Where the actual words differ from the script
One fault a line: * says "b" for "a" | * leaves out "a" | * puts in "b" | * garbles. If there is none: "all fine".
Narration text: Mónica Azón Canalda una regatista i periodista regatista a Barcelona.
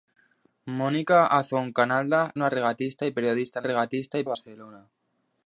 all fine